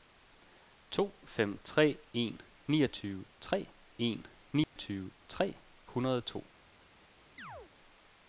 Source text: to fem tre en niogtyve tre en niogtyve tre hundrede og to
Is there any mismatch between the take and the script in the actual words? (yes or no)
no